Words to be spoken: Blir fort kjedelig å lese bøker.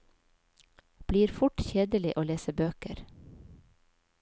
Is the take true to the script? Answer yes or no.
yes